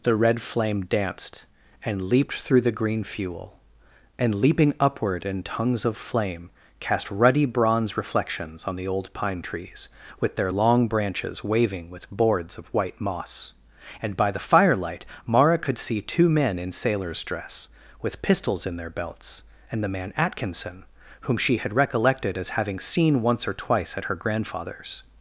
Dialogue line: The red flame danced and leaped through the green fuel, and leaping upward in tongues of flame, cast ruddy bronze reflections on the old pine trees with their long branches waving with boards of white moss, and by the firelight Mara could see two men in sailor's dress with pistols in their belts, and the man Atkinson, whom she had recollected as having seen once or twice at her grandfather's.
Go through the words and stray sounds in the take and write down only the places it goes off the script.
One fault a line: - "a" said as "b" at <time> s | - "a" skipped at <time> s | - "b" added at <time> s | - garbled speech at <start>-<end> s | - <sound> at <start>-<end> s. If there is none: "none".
none